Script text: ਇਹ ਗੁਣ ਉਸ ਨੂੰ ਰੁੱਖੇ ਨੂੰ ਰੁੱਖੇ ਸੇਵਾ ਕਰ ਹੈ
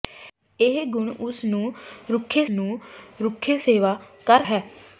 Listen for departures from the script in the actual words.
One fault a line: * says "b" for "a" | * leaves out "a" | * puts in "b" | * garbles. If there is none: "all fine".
all fine